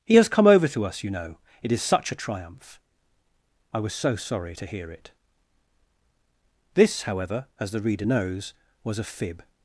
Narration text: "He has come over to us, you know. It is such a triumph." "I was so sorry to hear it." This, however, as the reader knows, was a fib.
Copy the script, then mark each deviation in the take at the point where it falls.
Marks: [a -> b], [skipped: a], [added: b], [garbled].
"He has come over to us, you know. It is such a triumph." "I was so sorry to hear it." This, however, as the reader knows, was a fib.